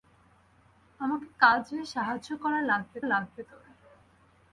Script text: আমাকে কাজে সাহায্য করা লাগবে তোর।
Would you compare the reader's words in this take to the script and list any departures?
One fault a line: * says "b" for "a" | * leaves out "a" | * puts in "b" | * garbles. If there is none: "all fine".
* puts in "লাগবে"